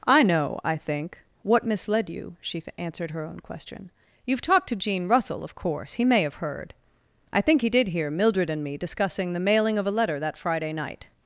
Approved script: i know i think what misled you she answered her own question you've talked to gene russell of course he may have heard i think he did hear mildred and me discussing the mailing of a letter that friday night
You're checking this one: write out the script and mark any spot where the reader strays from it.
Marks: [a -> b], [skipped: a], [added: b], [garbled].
i know i think what misled you she answered her own question you've talked to gene russell of course he may have heard i think he did hear mildred and me discussing the mailing of a letter that friday night